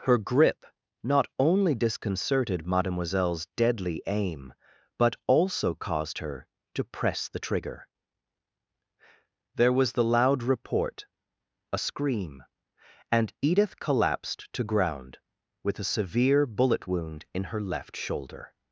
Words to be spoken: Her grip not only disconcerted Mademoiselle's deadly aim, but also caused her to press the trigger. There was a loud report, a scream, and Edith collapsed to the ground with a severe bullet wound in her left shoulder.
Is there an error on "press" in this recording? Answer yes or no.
no